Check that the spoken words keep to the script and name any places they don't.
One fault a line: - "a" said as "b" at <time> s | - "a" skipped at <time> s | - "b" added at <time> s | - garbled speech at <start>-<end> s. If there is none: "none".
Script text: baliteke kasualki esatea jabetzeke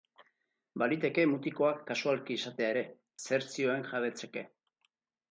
- "mutikoak" added at 1.3 s
- "ere zer zioen" added at 2.7 s